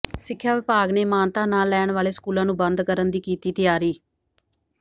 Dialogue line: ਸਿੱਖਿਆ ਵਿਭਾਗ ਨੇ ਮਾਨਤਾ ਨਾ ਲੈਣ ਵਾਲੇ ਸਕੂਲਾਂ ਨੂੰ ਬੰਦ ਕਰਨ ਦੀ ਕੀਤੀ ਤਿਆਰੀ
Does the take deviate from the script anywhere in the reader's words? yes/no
no